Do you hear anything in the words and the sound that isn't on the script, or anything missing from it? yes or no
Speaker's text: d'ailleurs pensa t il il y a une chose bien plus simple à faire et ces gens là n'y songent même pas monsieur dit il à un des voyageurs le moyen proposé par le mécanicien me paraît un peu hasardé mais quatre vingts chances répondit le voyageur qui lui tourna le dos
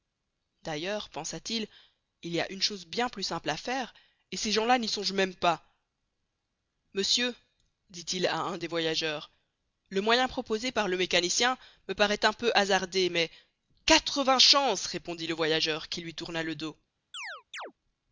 yes